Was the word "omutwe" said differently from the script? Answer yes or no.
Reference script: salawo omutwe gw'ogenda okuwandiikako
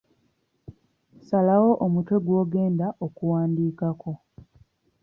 no